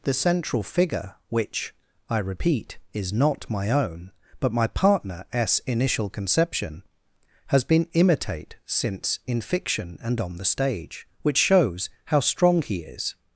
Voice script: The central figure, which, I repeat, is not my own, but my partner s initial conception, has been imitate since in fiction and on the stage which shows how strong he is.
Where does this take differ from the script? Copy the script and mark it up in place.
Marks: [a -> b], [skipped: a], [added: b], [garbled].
The central figure, which, I repeat, is not my own, but my partner s initial conception, has been imitate since in fiction and on the stage which shows how strong he is.